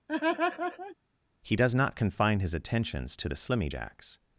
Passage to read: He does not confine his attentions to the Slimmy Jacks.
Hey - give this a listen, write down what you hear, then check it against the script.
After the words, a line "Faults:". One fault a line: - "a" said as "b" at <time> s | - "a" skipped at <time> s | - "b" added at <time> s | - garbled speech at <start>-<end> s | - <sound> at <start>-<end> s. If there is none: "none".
He does not confine his attentions to the Slimmy Jacks.
Faults:
- laugh at 0.1-1.0 s